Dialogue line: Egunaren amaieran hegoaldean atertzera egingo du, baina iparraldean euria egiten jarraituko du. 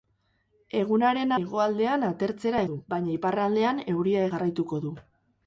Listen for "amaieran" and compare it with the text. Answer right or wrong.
wrong